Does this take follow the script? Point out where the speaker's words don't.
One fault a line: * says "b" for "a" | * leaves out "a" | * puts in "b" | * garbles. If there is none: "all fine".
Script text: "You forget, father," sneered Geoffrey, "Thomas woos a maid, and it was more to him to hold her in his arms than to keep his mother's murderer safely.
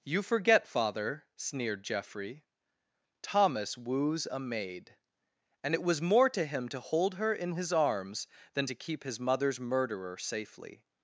all fine